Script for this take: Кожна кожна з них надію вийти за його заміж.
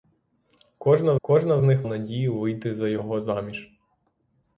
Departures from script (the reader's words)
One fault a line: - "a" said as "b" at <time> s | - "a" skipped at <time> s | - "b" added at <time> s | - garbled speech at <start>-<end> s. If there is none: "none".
none